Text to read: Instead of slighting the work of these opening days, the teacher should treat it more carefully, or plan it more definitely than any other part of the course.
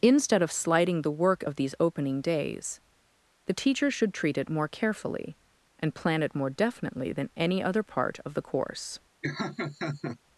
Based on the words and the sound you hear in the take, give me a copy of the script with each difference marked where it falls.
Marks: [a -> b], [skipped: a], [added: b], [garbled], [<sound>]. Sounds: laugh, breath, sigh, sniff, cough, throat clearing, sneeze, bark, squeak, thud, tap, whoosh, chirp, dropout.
Instead of slighting the work of these opening days, the teacher should treat it more carefully, [or -> and] plan it more definitely than any other part of the course. [laugh]